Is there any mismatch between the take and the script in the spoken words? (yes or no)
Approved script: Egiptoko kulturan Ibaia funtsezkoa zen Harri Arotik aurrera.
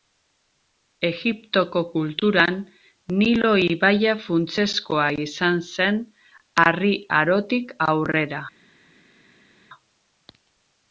yes